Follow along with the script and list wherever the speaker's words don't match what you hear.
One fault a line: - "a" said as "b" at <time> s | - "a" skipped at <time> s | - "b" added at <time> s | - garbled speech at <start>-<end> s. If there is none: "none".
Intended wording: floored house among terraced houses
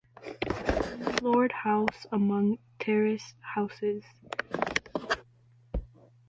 none